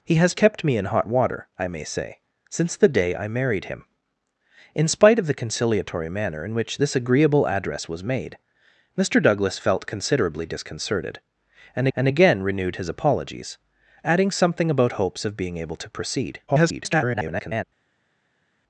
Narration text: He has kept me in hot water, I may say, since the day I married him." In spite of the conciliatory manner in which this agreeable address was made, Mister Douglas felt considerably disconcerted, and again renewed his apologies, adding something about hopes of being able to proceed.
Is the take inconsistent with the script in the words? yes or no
yes